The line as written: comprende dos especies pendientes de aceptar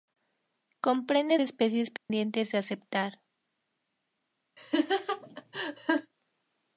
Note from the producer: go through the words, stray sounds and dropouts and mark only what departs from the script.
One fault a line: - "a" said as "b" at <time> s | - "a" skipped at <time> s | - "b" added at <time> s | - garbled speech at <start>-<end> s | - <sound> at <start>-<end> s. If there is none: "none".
- "dos" skipped at 1.4 s
- dropout at 2.0-2.1 s
- laugh at 4.6-6.1 s